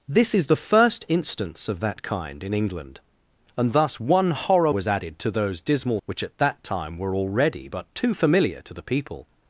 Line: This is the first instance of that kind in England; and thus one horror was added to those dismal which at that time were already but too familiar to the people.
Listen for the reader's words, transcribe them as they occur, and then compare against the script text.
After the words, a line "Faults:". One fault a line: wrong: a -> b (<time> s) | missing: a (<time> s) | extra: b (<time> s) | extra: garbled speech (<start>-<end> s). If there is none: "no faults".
This is the first instance of that kind in England; and thus one horror was added to those dismal which at that time were already but too familiar to the people.
Faults:
no faults